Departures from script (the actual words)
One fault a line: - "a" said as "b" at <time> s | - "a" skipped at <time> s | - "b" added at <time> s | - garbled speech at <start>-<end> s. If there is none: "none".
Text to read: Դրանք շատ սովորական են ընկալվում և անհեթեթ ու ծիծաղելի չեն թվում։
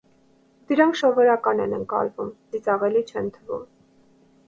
- "շատ" skipped at 0.9 s
- "և անհեթեթ ու" skipped at 2.3 s